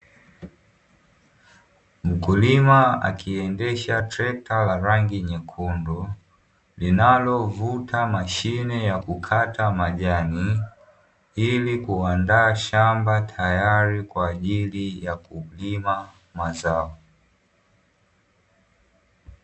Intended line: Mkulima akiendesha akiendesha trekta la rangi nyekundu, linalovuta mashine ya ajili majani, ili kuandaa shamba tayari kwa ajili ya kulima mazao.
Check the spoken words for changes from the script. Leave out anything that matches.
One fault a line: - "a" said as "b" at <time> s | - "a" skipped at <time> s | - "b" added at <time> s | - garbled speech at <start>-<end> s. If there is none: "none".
- "akiendesha" skipped at 4.0 s
- "ajili" said as "kukata" at 9.0 s